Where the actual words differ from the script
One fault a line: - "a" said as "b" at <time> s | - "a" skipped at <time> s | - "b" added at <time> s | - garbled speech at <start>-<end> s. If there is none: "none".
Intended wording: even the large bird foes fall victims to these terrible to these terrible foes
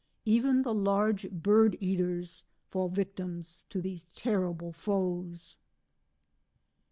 - "foes" said as "eaters" at 1.8 s
- "to these terrible" skipped at 4.7 s